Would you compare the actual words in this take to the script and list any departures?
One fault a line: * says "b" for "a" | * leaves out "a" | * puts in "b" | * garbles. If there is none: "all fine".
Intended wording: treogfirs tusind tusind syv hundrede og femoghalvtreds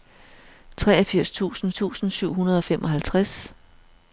all fine